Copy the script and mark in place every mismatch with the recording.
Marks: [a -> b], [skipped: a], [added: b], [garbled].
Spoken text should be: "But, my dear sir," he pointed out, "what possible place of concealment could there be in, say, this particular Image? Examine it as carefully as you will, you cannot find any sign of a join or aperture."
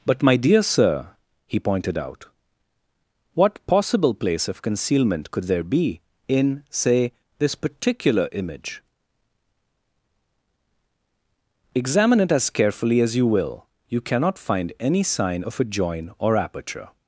"But, my dear sir," he pointed out, "what possible place of concealment could there be in, say, this particular Image? Examine it as carefully as you will, you cannot find any sign of a join or aperture."